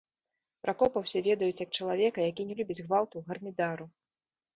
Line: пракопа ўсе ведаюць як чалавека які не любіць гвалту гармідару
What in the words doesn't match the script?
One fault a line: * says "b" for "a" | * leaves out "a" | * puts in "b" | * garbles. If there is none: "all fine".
all fine